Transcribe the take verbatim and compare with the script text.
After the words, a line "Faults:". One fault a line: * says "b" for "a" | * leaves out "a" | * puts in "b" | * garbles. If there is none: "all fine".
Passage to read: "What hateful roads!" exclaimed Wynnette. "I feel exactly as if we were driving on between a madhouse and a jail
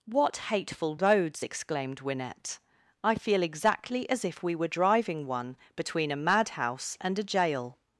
"What hateful roads!" exclaimed Wynnette. "I feel exactly as if we were driving one between a madhouse and a jail
Faults:
* says "one" for "on"